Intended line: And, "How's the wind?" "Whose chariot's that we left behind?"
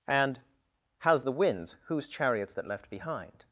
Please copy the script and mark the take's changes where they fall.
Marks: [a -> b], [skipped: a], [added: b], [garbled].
And, "How's the [wind?" -> winds] "Whose chariot's that [skipped: we] left behind?"